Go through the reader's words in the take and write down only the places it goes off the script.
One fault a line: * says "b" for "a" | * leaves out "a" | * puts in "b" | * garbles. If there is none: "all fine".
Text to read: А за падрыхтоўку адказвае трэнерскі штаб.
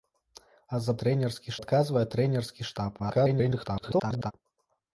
* says "трэнерскі" for "падрыхтоўку"
* garbles